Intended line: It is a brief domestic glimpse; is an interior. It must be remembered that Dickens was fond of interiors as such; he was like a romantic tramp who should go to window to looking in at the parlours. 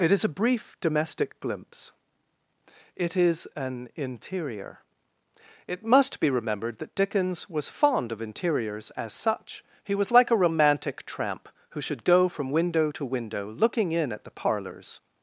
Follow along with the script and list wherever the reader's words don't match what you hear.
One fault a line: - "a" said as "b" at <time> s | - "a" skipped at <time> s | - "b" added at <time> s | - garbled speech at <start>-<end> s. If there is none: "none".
- "it" added at 3.0 s
- "to" said as "from" at 12.3 s
- "window" added at 13.0 s